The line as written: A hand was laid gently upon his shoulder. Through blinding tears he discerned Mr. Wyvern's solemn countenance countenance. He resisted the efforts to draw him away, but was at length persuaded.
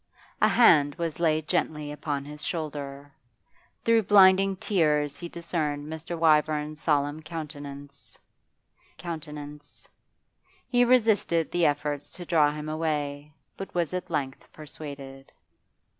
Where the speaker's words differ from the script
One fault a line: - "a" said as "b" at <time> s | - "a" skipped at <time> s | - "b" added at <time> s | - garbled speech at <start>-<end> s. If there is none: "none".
none